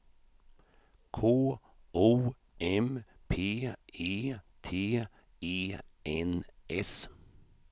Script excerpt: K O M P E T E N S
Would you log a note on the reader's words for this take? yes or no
no